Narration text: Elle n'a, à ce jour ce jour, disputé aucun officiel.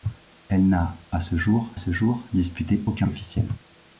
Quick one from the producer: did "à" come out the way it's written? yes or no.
yes